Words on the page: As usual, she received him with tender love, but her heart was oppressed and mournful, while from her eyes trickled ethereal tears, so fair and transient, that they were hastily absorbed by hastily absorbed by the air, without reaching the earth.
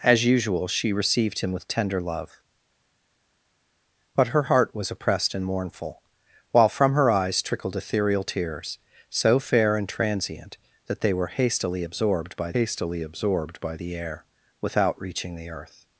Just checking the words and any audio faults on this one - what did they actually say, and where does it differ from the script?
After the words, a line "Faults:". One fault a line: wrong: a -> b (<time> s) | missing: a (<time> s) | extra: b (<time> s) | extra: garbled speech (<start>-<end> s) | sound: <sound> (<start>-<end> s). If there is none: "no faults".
As usual, she received him with tender love, but her heart was oppressed and mournful, while from her eyes trickled ethereal tears, so fair and transient, that they were hastily absorbed by hastily absorbed by the air, without reaching the earth.
Faults:
no faults